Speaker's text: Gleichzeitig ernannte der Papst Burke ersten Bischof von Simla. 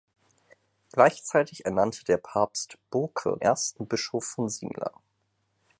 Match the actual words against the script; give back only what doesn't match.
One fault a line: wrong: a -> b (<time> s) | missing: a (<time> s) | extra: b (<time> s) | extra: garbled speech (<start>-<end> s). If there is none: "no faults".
no faults